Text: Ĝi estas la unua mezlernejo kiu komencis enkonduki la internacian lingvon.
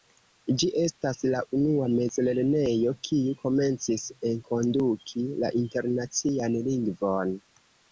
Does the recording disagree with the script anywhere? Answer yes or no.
no